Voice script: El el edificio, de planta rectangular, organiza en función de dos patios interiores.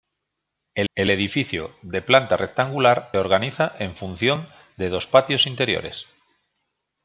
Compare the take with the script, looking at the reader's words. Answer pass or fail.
pass